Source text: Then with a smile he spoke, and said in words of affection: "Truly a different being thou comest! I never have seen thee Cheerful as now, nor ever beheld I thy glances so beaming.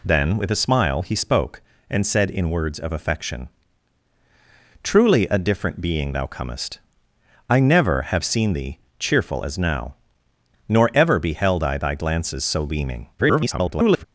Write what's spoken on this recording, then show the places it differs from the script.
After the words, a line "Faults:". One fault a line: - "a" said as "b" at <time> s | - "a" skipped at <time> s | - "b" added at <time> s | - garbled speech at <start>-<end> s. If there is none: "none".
Then with a smile he spoke, and said in words of affection: "Truly a different being thou comest! I never have seen thee Cheerful as now, nor ever beheld I thy glances so beaming. [garbled]
Faults:
- garbled speech at 13.2-14.0 s